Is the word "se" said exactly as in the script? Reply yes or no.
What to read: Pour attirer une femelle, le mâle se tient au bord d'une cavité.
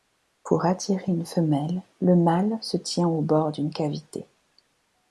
yes